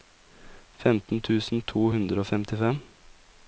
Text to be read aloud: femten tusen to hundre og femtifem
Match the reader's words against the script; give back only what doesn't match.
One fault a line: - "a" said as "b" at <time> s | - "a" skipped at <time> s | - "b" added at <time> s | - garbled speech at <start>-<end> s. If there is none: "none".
none